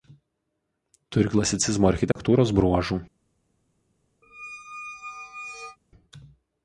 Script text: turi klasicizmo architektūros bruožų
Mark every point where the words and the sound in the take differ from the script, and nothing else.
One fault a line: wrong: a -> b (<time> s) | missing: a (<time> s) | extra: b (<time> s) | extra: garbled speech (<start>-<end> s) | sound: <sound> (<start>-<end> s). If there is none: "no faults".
sound: dropout (2.1-2.2 s)
sound: squeak (4.2-5.8 s)